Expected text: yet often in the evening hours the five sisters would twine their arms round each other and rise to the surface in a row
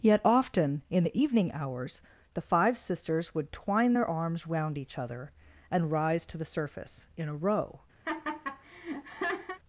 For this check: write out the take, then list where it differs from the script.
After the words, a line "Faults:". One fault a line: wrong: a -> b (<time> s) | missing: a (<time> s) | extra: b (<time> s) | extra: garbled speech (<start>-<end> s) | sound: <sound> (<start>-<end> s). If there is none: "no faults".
yet often in the evening hours the five sisters would twine their arms round each other and rise to the surface in a row
Faults:
sound: laugh (8.0-9.6 s)